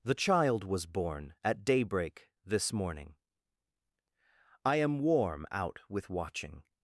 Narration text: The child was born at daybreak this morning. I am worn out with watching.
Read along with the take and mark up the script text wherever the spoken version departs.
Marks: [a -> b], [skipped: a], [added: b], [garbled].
The child was born at daybreak this morning. I am [worn -> warm] out with watching.